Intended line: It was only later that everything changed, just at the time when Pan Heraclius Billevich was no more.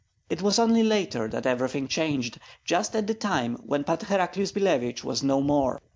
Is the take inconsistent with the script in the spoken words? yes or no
no